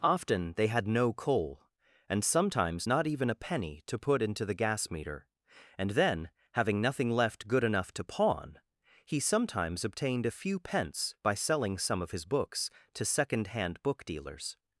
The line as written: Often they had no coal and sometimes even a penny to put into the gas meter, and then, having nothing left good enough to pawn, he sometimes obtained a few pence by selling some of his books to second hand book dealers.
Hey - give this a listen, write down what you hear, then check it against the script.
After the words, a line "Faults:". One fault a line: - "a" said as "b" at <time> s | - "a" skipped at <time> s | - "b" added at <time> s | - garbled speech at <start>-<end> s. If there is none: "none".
Often they had no coal and sometimes not even a penny to put into the gas meter, and then, having nothing left good enough to pawn, he sometimes obtained a few pence by selling some of his books to second hand book dealers.
Faults:
- "not" added at 2.9 s